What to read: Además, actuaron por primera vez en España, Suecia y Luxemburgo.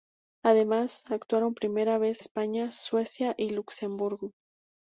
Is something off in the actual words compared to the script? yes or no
yes